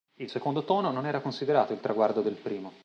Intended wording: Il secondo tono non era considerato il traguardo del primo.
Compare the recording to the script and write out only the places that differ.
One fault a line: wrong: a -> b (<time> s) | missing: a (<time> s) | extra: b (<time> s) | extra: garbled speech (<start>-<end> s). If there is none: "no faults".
no faults